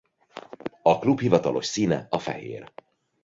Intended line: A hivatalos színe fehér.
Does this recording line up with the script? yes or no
no